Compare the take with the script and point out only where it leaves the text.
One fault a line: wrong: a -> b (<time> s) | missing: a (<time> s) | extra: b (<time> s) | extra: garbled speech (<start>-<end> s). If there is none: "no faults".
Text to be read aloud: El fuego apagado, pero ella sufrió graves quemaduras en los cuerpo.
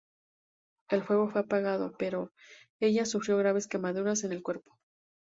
extra: fue (1.3 s)
wrong: los -> el (4.3 s)